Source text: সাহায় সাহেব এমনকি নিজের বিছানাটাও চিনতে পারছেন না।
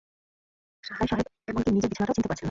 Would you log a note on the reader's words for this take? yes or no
no